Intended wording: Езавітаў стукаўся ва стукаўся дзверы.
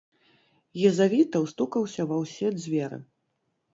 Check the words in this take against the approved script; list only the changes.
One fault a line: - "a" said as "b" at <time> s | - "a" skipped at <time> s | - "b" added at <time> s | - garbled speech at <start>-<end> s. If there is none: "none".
- "стукаўся" said as "ўсе" at 2.2 s